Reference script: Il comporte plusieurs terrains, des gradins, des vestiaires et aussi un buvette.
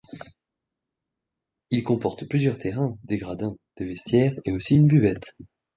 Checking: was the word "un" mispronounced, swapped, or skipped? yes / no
yes